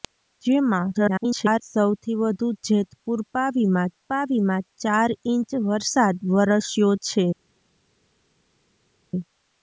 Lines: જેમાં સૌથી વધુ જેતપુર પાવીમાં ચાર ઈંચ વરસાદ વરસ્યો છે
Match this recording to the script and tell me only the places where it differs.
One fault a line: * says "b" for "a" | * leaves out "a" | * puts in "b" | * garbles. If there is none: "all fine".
* garbles
* puts in "પાવીમાં"